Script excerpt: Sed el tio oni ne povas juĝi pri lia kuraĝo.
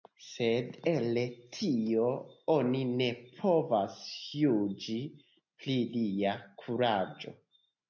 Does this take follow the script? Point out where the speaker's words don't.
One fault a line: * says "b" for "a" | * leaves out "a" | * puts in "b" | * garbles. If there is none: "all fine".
all fine